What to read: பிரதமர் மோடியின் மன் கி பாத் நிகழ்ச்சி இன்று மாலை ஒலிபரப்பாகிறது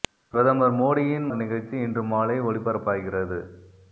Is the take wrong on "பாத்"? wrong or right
wrong